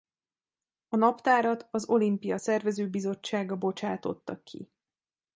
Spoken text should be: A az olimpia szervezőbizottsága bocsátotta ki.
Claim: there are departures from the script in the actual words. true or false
true